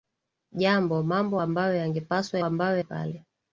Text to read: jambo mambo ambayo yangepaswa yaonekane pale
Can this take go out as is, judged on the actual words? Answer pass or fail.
fail